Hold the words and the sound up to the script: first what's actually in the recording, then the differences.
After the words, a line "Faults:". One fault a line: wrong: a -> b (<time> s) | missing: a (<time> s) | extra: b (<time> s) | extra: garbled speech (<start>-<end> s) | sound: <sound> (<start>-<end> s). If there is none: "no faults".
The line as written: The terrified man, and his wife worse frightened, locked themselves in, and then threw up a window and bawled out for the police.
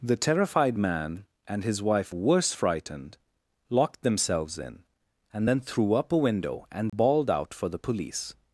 The terrified man, and his wife worse frightened, locked themselves in, and then threw up a window and bawled out for the police.
Faults:
sound: dropout (6.9-6.9 s)